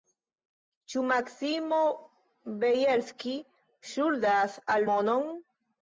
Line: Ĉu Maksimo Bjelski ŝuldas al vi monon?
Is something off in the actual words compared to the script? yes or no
yes